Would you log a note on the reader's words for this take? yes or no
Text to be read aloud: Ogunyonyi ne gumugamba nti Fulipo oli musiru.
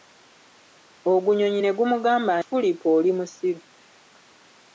yes